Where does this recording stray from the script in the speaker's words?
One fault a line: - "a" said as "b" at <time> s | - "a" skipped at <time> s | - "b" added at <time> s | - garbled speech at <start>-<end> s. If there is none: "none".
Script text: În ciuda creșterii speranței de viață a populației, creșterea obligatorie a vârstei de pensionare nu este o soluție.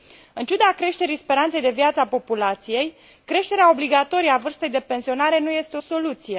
none